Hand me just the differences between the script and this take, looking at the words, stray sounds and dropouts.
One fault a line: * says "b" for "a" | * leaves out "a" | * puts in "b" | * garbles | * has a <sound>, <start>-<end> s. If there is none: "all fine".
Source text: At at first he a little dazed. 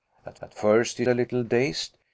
all fine